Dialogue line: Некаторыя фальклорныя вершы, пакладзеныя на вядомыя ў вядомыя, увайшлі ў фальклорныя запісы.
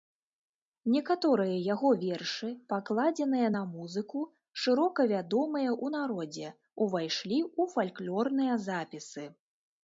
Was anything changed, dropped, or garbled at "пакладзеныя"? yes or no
no